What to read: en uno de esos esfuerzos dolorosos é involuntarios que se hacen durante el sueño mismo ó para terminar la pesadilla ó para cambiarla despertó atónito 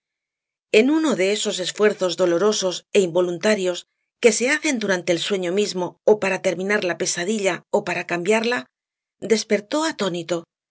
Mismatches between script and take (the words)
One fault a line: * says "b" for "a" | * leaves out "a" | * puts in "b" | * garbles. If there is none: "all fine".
all fine